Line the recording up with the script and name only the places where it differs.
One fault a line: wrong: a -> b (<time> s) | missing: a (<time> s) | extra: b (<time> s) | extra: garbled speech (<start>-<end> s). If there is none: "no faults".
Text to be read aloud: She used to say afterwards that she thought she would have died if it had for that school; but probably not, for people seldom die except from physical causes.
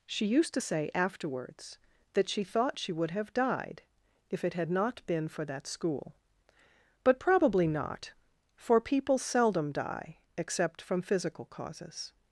extra: not been (4.7 s)